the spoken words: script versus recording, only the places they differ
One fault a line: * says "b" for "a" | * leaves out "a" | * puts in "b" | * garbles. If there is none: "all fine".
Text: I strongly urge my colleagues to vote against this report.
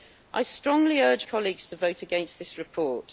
* leaves out "my"